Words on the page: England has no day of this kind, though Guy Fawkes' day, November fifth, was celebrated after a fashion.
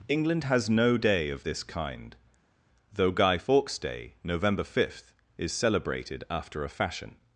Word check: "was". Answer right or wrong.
wrong